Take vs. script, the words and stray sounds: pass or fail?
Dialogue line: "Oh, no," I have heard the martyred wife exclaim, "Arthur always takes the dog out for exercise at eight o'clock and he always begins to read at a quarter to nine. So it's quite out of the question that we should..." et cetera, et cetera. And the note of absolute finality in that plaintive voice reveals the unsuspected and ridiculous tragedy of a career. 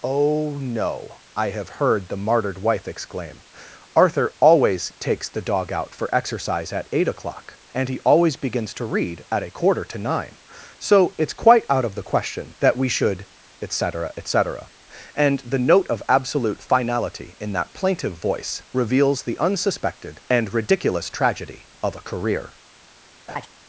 fail